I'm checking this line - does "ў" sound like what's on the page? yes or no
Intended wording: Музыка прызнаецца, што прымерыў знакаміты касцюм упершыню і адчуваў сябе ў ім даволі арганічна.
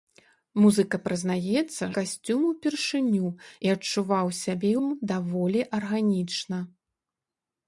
no